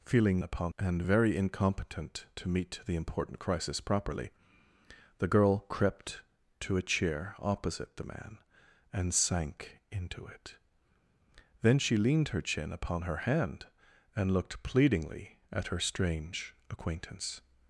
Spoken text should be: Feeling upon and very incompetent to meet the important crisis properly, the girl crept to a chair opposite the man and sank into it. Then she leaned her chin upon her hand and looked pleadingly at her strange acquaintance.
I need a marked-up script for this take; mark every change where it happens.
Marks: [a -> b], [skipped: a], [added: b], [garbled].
Feeling upon and very incompetent to meet the important crisis properly, the girl crept to a chair opposite the man and sank into it. Then she leaned her chin upon her hand and looked pleadingly at her strange acquaintance.